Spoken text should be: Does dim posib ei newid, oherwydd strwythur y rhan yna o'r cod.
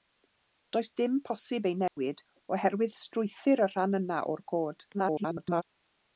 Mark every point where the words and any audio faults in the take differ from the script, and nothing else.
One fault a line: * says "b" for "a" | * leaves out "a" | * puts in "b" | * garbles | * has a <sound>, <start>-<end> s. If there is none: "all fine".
* has a dropout, 1.9-2.0 s
* garbles